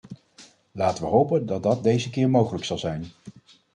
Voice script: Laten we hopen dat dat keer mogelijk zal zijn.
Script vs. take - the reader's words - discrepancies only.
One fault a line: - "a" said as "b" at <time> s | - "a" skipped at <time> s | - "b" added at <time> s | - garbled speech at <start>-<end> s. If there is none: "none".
- "deze" added at 1.8 s